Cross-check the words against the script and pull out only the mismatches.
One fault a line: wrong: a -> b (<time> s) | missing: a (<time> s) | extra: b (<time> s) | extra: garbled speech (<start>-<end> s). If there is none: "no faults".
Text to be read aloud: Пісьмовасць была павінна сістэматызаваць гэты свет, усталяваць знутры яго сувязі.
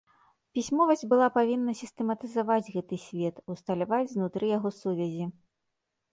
no faults